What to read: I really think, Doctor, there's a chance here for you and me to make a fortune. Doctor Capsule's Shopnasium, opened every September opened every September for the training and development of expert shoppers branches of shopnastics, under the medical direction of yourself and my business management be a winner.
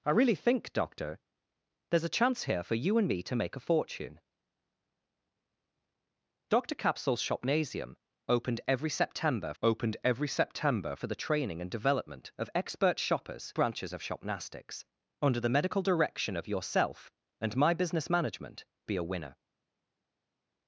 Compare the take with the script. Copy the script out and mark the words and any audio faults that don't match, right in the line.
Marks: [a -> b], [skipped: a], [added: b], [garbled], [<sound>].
I really think, Doctor, there's a chance here for you and me to make a fortune. Doctor Capsule's Shopnasium, opened every September opened every September for the training and development of expert shoppers branches of shopnastics, under the medical direction of yourself and my business management be a winner.